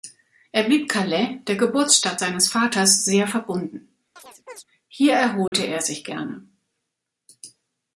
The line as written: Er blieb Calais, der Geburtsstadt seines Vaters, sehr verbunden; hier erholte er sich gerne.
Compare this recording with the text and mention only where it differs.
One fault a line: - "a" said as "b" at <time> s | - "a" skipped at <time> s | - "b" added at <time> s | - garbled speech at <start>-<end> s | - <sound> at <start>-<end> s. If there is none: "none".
- chirp at 4.2-4.6 s
- dropout at 5.5-5.5 s